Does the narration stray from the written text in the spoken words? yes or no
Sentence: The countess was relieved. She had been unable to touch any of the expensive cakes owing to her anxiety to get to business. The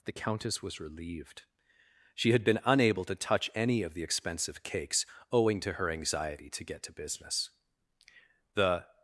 no